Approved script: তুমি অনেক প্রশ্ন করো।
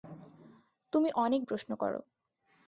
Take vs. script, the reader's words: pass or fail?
pass